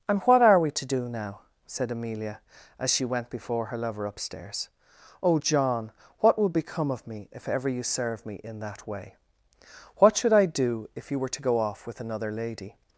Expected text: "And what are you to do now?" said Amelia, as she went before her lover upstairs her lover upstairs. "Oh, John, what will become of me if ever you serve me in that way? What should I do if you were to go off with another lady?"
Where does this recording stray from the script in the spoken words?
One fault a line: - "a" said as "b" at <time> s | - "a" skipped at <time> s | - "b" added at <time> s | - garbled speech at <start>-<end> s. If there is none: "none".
- "you" said as "we" at 0.6 s
- "her lover upstairs" skipped at 4.7 s